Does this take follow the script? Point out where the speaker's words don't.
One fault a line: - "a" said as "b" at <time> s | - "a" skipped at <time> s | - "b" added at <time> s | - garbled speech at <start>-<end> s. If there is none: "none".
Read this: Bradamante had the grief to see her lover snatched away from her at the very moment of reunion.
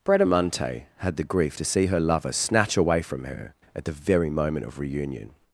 - "snatched" said as "snatch" at 2.3 s